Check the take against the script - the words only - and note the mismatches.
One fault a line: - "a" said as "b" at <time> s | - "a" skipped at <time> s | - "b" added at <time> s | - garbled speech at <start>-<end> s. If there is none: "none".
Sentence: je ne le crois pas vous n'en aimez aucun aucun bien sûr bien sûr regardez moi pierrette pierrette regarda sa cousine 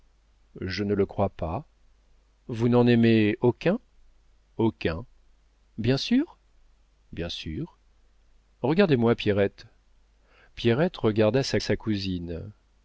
- "sa" added at 11.6 s